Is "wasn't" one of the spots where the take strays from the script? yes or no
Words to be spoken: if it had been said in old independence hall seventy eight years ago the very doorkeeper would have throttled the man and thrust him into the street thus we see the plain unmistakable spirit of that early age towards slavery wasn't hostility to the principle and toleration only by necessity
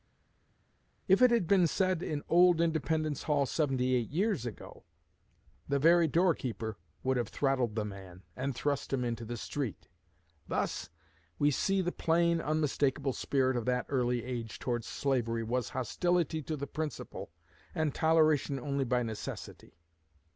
yes